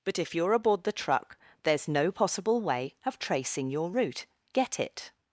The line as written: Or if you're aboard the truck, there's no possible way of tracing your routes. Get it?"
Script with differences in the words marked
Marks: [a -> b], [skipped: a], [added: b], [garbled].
[Or -> But] if you're aboard the truck, there's no possible way of tracing your [routes. -> route] Get it?"